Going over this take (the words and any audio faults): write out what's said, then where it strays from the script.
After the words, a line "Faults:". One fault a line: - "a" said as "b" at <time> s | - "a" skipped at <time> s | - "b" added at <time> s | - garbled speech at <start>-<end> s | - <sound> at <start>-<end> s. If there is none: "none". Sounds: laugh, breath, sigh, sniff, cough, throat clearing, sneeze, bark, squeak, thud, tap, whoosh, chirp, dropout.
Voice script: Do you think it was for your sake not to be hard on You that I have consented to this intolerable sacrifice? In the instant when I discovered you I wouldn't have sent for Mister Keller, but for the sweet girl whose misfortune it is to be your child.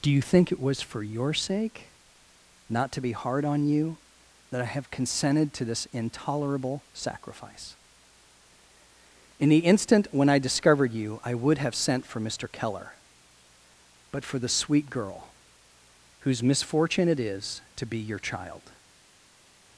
Do you think it was for your sake not to be hard on You that I have consented to this intolerable sacrifice? In the instant when I discovered you I would have sent for Mister Keller, but for the sweet girl whose misfortune it is to be your child.
Faults:
- "wouldn't" said as "would" at 11.3 s